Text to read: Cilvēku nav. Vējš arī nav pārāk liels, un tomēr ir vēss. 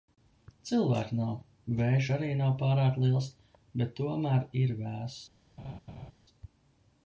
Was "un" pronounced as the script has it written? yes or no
no